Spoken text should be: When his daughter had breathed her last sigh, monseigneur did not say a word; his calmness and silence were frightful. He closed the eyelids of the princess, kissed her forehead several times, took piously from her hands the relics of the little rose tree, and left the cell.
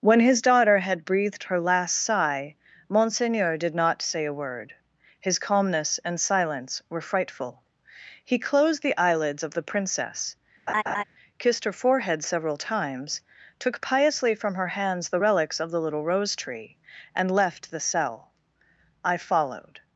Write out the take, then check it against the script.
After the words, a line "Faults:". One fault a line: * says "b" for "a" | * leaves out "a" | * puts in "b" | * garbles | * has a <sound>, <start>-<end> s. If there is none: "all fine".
When his daughter had breathed her last sigh, monseigneur did not say a word; his calmness and silence were frightful. He closed the eyelids of the princess, kissed her forehead several times, took piously from her hands the relics of the little rose tree, and left the cell. I followed
Faults:
* has a laugh, 10.7-11.0 s
* puts in "I followed"